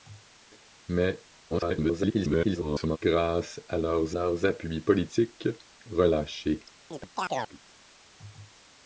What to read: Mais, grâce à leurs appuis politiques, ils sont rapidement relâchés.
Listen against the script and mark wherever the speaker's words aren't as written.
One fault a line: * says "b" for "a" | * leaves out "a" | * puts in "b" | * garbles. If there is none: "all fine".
* garbles
* puts in "leurs"
* leaves out "ils sont rapidement"